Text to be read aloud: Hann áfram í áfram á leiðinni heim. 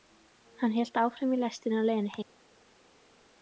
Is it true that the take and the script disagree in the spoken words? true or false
true